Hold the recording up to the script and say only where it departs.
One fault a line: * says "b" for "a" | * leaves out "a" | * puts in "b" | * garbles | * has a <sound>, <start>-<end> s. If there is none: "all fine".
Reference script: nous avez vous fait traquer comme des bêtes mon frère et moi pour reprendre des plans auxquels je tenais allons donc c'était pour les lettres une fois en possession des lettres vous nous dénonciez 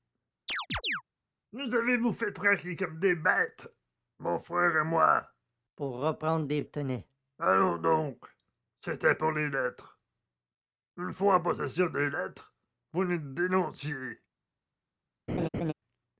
* has a chirp, 0.5-1.0 s
* leaves out "plans auxquels je"
* has a laugh, 15.3-15.7 s